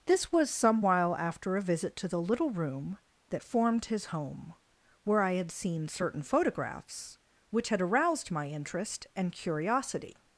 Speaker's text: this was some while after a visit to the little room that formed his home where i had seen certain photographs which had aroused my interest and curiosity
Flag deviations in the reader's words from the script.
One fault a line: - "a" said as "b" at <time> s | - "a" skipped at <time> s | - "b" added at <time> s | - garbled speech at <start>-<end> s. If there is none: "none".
none